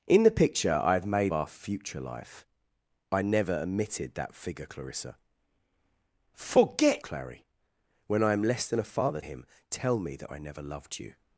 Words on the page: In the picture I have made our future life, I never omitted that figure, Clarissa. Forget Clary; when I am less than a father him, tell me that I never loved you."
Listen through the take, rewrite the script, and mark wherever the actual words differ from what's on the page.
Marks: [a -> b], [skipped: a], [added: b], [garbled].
In the picture I have made our future life, I never omitted that figure, Clarissa. Forget Clary; when I am less than a father him, tell me that I never loved you."